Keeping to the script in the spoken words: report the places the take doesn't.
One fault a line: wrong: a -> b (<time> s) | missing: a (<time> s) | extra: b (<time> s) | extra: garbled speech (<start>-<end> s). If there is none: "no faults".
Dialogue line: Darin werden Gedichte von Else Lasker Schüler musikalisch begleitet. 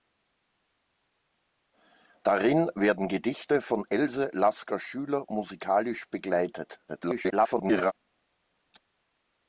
extra: garbled speech (6.9-7.9 s)